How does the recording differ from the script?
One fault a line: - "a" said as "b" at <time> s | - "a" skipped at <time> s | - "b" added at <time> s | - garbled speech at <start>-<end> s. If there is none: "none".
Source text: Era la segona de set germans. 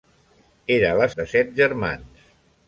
- "segona" skipped at 1.1 s